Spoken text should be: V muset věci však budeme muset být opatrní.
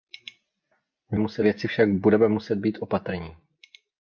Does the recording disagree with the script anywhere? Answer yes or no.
no